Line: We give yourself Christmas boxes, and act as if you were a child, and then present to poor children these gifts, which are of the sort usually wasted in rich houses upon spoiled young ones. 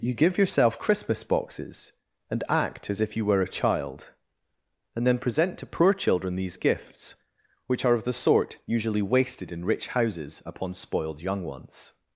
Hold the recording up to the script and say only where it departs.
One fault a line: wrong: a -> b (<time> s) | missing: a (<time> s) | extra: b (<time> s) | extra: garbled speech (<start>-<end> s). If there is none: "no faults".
wrong: We -> You (0.0 s)